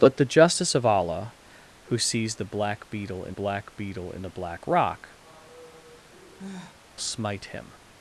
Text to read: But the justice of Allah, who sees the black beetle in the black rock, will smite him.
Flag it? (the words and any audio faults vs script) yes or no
yes